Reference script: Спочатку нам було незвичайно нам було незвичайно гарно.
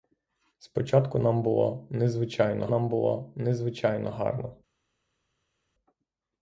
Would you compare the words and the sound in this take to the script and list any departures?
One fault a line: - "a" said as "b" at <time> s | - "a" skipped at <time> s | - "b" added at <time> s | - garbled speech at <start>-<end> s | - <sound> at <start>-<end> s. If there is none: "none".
none